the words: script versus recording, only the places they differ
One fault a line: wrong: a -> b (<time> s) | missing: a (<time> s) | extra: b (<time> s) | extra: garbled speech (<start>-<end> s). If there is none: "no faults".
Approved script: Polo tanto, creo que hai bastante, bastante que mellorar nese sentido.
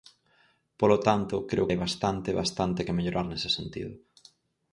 missing: que (1.7 s)